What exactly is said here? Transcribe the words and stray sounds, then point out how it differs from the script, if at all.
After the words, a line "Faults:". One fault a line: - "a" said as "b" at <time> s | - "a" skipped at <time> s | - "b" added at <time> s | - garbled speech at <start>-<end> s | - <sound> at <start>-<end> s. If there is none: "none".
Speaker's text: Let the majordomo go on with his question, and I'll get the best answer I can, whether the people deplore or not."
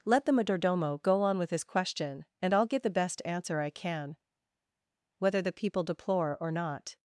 Let the majordomo go on with his question, and I'll get the best answer I can, whether the people deplore or not."
Faults:
none